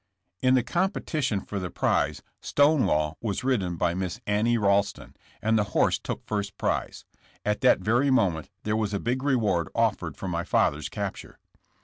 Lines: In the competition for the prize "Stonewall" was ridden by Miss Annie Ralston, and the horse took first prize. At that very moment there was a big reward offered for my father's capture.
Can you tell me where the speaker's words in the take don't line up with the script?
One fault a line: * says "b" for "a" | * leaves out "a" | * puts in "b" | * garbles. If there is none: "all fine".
all fine